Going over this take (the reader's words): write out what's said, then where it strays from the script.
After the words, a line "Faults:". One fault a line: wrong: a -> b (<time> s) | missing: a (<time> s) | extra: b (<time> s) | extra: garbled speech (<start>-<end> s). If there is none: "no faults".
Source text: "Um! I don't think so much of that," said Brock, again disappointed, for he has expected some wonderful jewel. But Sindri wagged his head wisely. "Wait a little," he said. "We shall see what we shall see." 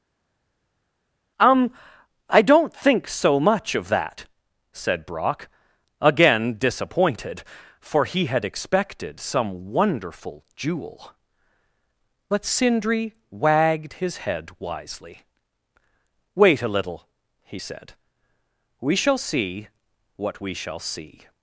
"Um! I don't think so much of that," said Brock, again disappointed, for he had expected some wonderful jewel. But Sindri wagged his head wisely. "Wait a little," he said. "We shall see what we shall see."
Faults:
wrong: has -> had (8.3 s)